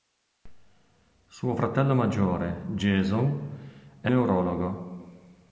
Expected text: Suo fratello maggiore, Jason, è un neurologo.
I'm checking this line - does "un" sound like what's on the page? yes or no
no